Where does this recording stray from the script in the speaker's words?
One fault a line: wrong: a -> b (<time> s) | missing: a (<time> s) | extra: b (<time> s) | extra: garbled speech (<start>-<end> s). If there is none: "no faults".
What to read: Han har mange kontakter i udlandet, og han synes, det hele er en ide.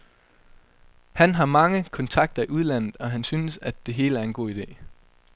extra: at (3.6 s)
extra: god (4.3 s)